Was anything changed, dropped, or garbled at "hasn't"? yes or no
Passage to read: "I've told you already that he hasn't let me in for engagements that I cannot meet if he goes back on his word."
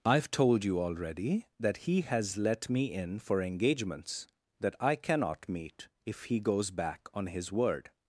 yes